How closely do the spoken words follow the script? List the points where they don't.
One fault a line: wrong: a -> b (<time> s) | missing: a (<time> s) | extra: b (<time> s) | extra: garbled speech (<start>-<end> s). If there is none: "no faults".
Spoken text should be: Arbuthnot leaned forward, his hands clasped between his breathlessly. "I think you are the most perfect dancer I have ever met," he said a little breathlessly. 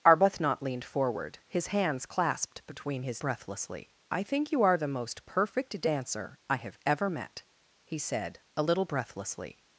no faults